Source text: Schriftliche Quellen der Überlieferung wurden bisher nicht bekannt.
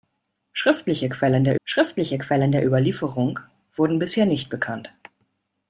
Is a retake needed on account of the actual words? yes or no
yes